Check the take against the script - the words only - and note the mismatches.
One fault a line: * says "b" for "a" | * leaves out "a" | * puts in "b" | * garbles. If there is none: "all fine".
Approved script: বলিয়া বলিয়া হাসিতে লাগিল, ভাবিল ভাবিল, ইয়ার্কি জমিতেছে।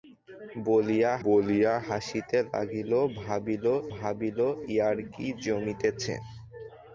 all fine